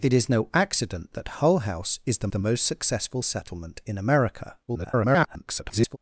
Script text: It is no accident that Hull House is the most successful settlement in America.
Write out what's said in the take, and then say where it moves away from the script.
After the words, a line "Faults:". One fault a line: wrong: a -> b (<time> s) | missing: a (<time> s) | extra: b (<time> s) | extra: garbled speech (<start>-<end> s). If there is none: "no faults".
It is no accident that Hull House is the the most successful settlement in America. [garbled]
Faults:
extra: the (2.3 s)
extra: garbled speech (4.7-6.0 s)